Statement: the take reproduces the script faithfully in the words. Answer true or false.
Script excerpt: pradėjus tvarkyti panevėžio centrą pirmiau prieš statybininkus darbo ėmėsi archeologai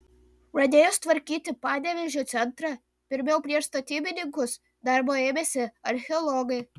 true